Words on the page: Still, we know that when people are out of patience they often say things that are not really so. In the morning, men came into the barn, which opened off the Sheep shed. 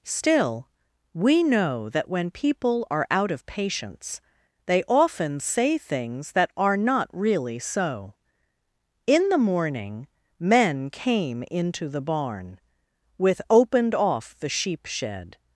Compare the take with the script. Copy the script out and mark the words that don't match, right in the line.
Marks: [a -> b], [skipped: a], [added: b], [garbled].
Still, we know that when people are out of patience they often say things that are not really so. In the morning, men came into the barn, [which -> with] opened off the Sheep shed.